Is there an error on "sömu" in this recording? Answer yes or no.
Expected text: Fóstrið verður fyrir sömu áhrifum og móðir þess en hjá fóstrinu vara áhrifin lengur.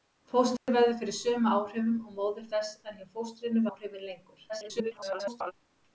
no